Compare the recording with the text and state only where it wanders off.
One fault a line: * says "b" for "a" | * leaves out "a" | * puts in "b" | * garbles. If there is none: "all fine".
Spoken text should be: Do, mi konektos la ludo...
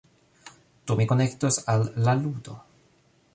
* puts in "al"